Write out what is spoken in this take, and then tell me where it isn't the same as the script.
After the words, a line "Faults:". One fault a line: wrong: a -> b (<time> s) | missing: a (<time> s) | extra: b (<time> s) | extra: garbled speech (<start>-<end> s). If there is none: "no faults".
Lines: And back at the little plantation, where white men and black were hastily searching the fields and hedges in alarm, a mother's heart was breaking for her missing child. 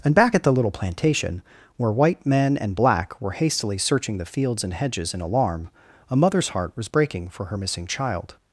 And back at the little plantation, where white men and black were hastily searching the fields and hedges in alarm, a mother's heart was breaking for her missing child.
Faults:
no faults